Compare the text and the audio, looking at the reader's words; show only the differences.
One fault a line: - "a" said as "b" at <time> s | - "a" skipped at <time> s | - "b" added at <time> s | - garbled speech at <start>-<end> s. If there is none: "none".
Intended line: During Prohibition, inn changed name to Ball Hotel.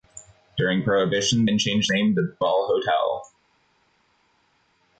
none